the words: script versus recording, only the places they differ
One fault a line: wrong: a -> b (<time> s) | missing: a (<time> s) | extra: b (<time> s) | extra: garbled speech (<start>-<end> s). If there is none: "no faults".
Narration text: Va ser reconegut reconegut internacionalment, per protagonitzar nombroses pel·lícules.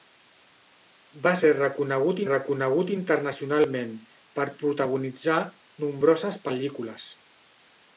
no faults